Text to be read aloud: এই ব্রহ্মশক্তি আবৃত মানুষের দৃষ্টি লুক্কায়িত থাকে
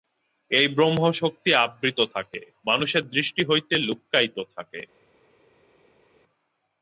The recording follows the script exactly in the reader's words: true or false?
false